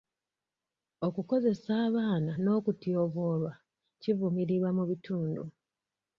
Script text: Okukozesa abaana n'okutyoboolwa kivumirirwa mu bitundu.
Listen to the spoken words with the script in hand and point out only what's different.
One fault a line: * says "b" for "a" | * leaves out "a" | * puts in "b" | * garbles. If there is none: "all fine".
all fine